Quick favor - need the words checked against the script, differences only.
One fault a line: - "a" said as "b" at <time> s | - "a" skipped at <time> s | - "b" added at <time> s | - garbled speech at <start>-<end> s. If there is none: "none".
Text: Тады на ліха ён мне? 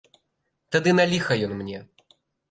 none